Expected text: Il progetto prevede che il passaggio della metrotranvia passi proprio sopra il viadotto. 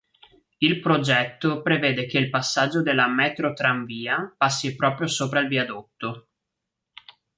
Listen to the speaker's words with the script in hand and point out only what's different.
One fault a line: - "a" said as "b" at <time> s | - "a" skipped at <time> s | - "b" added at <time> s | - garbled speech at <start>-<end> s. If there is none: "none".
none